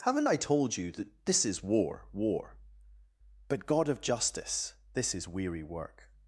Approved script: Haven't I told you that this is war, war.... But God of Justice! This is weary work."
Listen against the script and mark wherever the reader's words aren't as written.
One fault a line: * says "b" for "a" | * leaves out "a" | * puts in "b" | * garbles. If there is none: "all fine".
all fine